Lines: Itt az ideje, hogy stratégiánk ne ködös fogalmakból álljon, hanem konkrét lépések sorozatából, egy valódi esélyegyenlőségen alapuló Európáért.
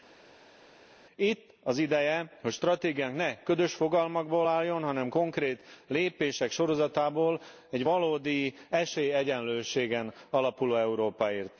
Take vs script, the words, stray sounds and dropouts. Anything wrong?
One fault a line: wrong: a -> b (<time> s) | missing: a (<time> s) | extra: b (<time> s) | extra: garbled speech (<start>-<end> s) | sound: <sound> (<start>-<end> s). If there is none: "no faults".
no faults